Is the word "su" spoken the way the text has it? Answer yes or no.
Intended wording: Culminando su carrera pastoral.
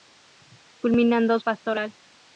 no